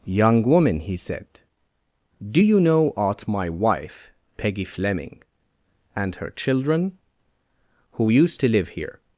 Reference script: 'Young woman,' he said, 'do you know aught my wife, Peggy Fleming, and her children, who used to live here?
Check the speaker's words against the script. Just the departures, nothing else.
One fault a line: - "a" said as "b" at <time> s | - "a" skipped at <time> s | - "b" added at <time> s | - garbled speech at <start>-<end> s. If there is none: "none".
none